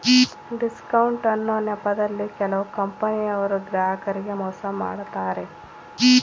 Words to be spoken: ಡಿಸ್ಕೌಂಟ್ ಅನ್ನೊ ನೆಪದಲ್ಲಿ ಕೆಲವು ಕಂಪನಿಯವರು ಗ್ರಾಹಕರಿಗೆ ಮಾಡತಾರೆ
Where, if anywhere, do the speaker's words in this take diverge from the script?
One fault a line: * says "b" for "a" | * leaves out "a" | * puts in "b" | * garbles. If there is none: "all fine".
* puts in "ಮೋಸ"